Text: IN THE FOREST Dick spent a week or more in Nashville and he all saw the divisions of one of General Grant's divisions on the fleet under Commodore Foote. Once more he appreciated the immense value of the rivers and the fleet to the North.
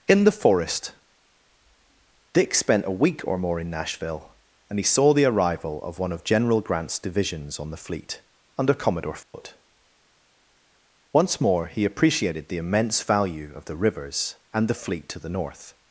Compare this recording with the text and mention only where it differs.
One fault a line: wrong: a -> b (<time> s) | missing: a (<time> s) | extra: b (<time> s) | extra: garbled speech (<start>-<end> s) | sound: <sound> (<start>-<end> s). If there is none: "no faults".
missing: all (4.8 s)
wrong: divisions -> arrival (5.2 s)
sound: dropout (9.2-9.3 s)